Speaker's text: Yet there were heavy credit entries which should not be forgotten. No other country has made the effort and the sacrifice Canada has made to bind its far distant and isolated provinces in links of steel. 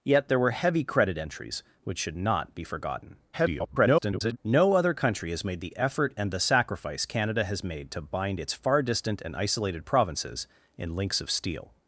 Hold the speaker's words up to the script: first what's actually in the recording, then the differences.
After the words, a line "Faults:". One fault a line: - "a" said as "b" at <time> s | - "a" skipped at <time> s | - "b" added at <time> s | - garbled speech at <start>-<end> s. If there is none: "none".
Yet there were heavy credit entries which should not be forgotten. [garbled] No other country has made the effort and the sacrifice Canada has made to bind its far distant and isolated provinces in links of steel.
Faults:
- garbled speech at 3.3-4.4 s